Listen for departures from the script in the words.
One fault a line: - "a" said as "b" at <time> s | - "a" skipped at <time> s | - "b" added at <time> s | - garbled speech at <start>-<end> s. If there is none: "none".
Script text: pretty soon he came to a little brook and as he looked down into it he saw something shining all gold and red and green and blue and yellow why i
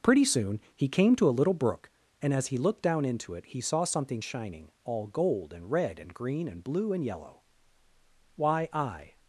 none